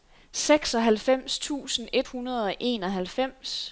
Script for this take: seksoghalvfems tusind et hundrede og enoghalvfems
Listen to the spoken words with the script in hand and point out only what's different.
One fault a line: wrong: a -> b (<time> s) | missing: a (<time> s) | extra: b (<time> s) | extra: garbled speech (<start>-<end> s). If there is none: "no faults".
no faults